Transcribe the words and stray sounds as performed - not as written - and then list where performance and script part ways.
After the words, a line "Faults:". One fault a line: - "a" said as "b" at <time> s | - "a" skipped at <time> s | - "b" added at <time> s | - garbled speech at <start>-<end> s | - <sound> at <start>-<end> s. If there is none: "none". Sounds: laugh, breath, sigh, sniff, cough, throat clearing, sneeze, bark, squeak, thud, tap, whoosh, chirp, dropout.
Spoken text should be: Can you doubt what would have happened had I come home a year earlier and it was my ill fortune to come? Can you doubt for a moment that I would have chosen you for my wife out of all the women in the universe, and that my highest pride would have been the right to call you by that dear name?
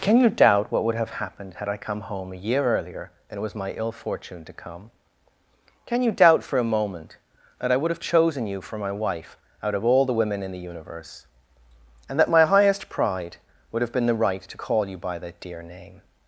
Can you doubt what would have happened had I come home a year earlier and it was my ill fortune to come? Can you doubt for a moment that I would have chosen you for my wife out of all the women in the universe, and that my highest pride would have been the right to call you by that dear name?
Faults:
none